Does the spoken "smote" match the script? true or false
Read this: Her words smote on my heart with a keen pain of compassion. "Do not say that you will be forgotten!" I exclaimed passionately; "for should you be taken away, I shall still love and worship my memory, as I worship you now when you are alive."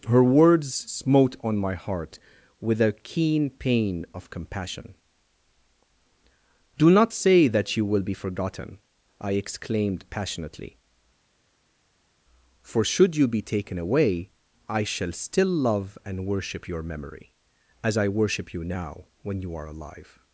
true